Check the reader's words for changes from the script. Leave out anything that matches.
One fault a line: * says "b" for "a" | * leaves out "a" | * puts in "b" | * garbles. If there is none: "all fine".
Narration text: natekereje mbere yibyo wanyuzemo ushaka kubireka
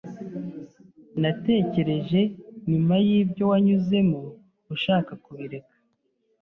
* says "nyuma" for "mbere"